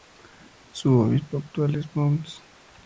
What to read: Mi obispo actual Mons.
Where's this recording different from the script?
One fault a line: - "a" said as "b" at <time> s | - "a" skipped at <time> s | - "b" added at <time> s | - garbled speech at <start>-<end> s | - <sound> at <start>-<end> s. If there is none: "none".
- "Mi" said as "Su" at 0.7 s
- "es" added at 1.7 s